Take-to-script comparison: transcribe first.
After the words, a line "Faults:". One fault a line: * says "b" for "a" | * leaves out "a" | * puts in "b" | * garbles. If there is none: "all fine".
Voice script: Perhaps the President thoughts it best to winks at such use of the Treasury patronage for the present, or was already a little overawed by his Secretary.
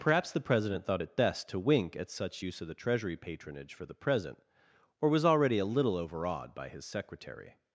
Perhaps the President thought it best to wink at such use of the Treasury patronage for the present, or was already a little overawed by his Secretary.
Faults:
* says "thought" for "thoughts"
* says "wink" for "winks"